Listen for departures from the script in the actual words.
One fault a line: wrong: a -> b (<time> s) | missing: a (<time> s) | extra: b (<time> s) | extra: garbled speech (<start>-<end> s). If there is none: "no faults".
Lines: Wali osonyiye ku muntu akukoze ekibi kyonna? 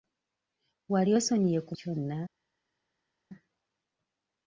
missing: muntu akukoze ekibi (1.7 s)